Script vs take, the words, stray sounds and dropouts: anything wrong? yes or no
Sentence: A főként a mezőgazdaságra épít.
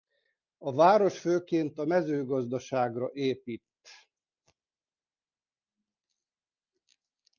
yes